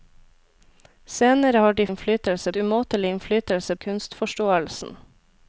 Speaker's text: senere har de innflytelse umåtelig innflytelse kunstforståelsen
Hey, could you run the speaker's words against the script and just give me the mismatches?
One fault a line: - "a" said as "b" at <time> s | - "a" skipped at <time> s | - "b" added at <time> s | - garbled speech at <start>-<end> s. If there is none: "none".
none